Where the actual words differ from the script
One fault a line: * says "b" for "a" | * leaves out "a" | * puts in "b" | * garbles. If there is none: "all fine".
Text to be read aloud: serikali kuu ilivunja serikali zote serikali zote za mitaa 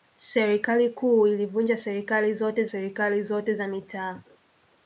all fine